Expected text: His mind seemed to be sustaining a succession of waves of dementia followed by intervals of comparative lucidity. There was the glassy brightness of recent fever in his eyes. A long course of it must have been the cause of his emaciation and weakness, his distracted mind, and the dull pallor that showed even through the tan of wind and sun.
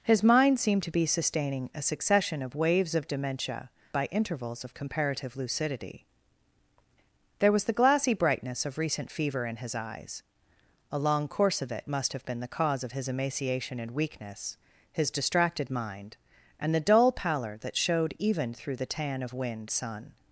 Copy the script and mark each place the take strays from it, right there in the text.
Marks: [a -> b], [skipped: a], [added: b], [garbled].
His mind seemed to be sustaining a succession of waves of dementia [skipped: followed] by intervals of comparative lucidity. There was the glassy brightness of recent fever in his eyes. A long course of it must have been the cause of his emaciation and weakness, his distracted mind, and the dull pallor that showed even through the tan of wind [skipped: and] sun.